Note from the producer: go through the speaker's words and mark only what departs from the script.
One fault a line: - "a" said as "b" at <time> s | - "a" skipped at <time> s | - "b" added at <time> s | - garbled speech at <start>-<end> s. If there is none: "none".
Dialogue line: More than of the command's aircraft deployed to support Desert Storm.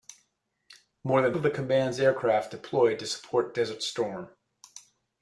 none